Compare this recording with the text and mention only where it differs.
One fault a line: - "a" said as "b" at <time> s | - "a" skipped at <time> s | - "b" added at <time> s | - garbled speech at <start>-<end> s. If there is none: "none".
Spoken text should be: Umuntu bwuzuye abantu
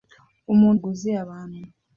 none